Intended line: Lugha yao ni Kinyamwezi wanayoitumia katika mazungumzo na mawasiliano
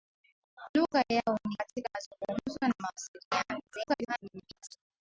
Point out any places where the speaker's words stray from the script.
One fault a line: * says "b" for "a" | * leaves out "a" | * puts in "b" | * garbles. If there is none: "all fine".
* leaves out "Kinyamwezi wanayoitumia"
* garbles